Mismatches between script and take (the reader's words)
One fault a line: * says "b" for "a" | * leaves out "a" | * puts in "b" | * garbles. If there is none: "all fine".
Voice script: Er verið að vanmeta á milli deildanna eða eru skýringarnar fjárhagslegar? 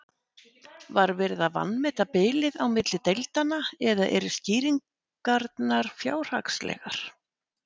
* says "Var" for "Er"
* puts in "bilið"